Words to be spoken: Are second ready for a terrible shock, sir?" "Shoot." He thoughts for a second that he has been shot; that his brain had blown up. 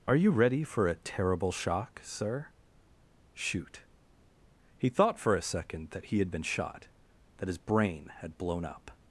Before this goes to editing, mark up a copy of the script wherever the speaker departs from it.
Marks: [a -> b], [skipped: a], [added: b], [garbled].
Are [second -> you] ready for a terrible shock, sir?" "Shoot." He [thoughts -> thought] for a second that he [has -> had] been shot; that his brain had blown up.